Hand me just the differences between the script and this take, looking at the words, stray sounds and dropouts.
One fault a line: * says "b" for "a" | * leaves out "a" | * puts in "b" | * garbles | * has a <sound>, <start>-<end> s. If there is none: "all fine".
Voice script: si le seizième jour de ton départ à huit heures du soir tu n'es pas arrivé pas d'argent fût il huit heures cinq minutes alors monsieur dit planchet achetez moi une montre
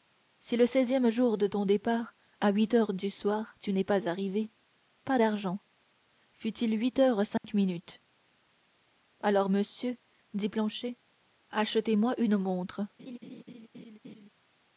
* has a dropout, 7.4-7.4 s
* has a laugh, 13.0-14.3 s